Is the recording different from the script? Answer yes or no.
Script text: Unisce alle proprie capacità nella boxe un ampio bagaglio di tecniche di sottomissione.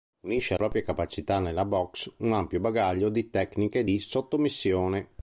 yes